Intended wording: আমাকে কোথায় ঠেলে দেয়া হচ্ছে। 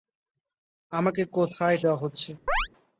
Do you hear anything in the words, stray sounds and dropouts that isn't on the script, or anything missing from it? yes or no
yes